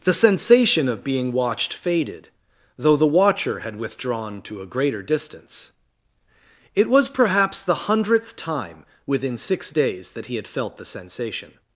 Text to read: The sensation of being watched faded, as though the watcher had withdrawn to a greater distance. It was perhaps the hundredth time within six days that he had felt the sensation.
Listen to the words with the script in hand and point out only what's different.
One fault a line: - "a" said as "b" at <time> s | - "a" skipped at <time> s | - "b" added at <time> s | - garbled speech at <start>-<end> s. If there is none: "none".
- "as" skipped at 2.3 s